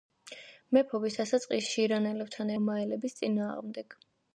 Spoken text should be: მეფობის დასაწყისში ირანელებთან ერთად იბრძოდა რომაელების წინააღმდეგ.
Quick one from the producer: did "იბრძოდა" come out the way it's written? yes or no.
no